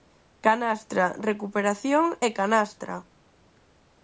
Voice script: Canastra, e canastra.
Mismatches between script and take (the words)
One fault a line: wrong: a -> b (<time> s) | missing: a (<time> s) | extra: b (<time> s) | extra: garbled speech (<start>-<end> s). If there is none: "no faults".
extra: recuperación (1.3 s)